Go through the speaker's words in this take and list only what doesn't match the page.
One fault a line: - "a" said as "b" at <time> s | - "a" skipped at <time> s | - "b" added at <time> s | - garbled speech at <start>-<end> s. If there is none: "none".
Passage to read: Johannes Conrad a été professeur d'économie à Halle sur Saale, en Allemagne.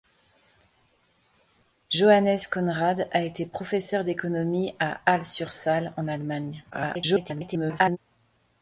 - garbled speech at 6.7-8.0 s